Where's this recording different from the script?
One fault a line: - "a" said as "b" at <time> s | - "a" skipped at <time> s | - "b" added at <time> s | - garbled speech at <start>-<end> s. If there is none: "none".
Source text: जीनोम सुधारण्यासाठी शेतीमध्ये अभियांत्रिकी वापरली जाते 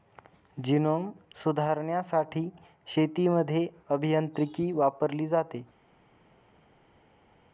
none